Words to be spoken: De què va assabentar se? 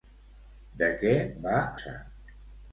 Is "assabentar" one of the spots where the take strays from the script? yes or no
yes